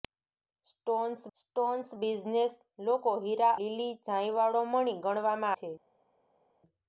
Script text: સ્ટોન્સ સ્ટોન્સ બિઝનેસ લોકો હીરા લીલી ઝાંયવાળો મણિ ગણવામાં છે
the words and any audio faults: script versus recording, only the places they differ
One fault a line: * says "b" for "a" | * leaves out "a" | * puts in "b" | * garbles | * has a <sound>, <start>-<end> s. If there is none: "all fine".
all fine